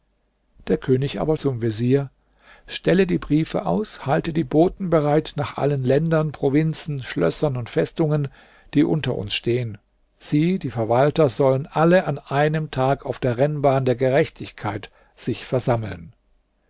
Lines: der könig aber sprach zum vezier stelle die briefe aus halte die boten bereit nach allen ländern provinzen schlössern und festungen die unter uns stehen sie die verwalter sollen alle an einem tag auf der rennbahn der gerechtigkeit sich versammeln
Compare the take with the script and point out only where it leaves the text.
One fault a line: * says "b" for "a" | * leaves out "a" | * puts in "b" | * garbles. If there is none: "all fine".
* leaves out "sprach"